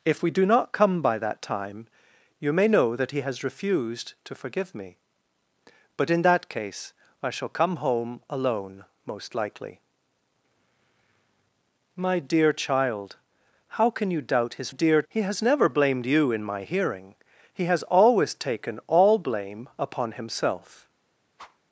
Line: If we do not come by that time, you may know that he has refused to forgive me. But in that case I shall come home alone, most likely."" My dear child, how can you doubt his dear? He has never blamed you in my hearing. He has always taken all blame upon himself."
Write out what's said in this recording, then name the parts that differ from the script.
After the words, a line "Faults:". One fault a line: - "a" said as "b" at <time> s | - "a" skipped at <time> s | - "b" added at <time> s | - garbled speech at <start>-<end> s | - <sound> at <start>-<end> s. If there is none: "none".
If we do not come by that time, you may know that he has refused to forgive me. But in that case I shall come home alone, most likely."" My dear child, how can you doubt his dear? He has never blamed you in my hearing. He has always taken all blame upon himself."
Faults:
- whoosh at 21.4-21.6 s